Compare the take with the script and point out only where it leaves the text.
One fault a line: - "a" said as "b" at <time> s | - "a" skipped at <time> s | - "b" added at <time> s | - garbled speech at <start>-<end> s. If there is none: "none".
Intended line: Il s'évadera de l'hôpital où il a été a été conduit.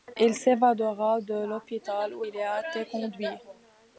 - "a été" skipped at 2.8 s